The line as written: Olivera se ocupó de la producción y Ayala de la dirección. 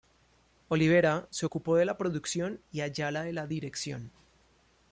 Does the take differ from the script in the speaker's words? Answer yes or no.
no